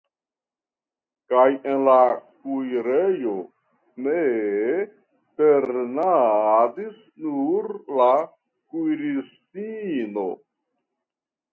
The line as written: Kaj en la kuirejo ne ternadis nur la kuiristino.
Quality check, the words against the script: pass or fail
pass